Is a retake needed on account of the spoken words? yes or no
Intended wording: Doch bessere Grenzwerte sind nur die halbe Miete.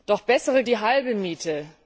yes